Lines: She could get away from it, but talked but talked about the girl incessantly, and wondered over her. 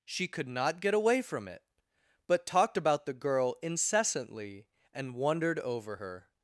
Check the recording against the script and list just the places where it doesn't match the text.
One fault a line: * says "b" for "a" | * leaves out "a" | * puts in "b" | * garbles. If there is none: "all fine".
* puts in "not"
* leaves out "but talked"